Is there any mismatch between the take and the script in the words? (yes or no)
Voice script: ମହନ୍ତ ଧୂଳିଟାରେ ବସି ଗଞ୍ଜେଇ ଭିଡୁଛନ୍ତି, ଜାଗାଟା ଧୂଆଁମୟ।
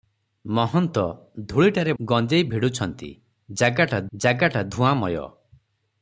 yes